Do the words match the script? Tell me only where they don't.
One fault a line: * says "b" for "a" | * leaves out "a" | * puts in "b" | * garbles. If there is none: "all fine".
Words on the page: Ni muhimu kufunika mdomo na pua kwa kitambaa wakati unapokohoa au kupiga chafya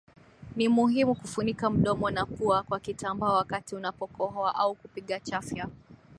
all fine